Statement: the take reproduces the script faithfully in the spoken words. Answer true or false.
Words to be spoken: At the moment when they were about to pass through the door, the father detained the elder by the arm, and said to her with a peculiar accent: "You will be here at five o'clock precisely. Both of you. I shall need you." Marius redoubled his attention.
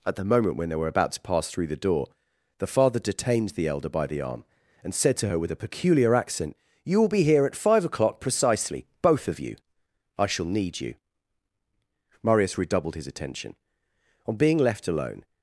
false